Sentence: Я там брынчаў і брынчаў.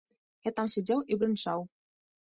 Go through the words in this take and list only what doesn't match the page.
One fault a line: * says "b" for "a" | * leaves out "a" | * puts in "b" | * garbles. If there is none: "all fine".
* says "сядзеў" for "брынчаў"